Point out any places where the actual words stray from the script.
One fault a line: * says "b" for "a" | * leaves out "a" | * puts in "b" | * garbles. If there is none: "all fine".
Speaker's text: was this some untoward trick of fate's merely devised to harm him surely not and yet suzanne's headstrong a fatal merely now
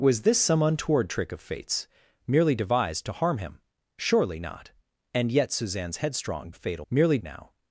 all fine